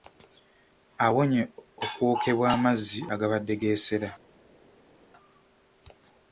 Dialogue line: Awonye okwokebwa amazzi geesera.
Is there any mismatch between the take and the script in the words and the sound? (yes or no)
yes